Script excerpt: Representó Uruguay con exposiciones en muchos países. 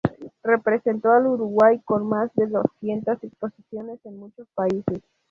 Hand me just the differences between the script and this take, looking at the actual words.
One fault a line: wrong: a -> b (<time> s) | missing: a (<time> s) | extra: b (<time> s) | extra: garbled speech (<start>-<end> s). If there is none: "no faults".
extra: al (1.1 s)
extra: más de doscientas (2.1 s)